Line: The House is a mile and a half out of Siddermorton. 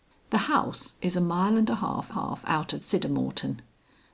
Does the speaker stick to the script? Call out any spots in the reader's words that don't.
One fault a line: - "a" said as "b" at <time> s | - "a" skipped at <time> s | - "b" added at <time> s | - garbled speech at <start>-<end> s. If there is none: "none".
- "half" added at 2.1 s